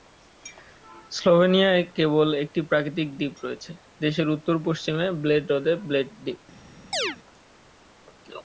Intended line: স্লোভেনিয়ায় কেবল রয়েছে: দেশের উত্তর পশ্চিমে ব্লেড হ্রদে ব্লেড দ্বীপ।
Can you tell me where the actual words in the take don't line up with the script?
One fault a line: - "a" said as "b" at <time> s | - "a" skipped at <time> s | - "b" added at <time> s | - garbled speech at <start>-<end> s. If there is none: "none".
- "একটি প্রাকৃতিক দ্বীপ" added at 2.4 s